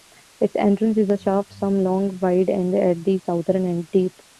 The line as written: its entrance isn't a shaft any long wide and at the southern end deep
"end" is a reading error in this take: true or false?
false